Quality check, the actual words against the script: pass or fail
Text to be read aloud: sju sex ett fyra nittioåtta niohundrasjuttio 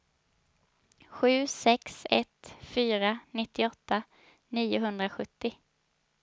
pass